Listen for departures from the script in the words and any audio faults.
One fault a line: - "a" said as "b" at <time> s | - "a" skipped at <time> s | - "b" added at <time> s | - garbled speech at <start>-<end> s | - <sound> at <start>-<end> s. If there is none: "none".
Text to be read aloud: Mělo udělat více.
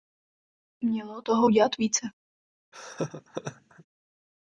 - "toho" added at 1.2 s
- laugh at 2.7-3.9 s